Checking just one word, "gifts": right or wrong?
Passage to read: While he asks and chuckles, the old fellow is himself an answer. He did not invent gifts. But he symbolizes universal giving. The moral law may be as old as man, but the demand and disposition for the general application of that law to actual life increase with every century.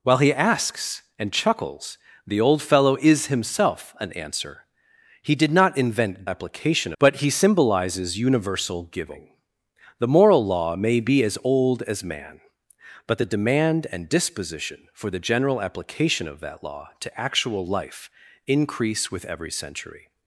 wrong